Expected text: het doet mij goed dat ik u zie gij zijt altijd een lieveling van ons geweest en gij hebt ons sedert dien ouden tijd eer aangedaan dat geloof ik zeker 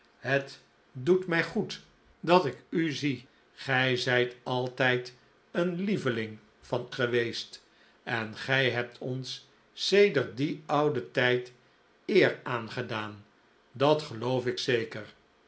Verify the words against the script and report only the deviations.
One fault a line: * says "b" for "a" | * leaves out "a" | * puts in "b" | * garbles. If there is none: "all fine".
* leaves out "ons"